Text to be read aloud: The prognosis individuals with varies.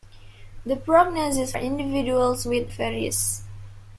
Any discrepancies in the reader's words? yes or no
no